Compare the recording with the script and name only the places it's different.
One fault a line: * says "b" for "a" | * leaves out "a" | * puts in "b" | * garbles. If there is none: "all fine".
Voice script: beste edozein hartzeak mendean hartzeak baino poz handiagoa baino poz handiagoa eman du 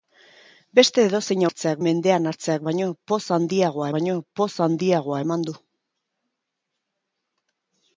all fine